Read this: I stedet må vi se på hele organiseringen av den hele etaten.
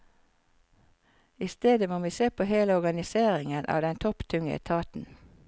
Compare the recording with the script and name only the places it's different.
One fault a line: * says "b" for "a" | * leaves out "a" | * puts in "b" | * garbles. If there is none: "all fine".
* says "topptunge" for "hele"